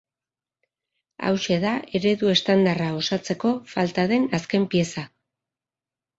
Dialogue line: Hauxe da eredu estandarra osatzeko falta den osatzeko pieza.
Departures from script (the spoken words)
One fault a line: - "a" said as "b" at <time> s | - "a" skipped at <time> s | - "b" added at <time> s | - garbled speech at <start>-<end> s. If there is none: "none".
- "osatzeko" said as "azken" at 4.4 s